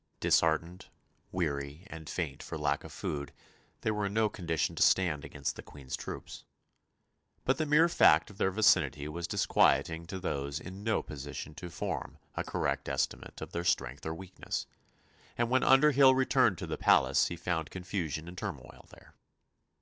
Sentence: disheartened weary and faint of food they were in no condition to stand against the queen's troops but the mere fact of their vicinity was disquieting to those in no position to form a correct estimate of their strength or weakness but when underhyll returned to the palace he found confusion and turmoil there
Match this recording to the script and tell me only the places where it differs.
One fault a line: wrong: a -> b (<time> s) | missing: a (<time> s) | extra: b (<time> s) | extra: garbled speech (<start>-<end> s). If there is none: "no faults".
extra: for lack (2.4 s)
wrong: but -> and (15.4 s)